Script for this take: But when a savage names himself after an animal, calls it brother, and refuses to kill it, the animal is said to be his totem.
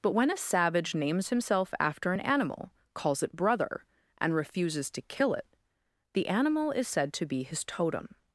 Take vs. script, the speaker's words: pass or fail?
pass